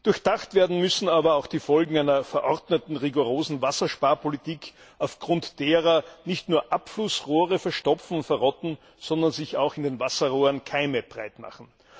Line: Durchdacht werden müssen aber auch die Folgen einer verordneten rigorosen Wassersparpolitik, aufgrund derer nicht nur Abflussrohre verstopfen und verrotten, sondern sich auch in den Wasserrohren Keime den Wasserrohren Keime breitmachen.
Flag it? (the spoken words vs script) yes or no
yes